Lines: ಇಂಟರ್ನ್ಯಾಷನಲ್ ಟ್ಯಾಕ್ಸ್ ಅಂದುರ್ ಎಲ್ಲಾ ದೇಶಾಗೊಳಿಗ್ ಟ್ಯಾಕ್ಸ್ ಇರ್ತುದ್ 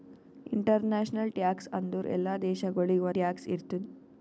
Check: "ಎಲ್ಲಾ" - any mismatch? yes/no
no